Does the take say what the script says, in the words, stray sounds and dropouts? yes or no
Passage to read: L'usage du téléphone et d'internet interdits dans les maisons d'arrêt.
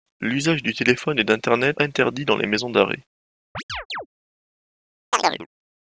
no